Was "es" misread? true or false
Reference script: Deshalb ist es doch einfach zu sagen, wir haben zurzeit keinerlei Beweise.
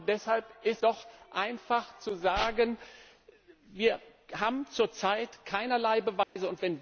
true